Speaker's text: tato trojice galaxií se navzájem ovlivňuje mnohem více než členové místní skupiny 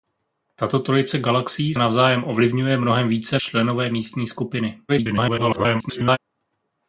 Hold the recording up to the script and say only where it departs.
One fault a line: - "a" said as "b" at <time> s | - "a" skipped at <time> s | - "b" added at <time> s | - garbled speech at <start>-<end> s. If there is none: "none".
- "se" skipped at 1.8 s
- "než" skipped at 3.4 s
- garbled speech at 4.9-6.2 s